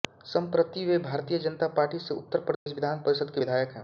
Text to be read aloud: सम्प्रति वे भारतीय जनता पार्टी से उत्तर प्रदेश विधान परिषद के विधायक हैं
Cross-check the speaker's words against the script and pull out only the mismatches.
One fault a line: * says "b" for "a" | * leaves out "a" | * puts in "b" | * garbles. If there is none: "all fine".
all fine